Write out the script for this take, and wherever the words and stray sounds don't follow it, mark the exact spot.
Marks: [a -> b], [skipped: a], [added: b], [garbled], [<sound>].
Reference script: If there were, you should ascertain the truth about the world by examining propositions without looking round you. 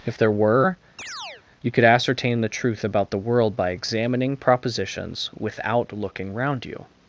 If there were, [chirp] you [should -> could] ascertain the truth about the world by examining propositions without looking round you.